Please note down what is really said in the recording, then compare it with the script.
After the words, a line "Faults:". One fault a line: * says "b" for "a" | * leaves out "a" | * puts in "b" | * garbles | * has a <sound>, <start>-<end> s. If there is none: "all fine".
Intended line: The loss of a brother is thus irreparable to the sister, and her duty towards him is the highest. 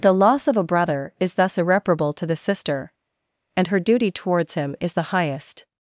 The loss of a brother is thus irreparable to the sister, and her duty towards him is the highest.
Faults:
all fine